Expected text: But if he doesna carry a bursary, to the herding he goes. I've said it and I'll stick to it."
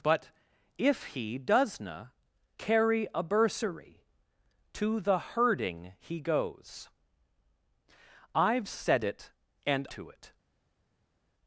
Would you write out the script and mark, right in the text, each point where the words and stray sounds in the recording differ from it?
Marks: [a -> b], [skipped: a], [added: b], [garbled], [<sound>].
But if he doesna carry a bursary, to the herding he goes. I've said it and [skipped: I'll stick] to it."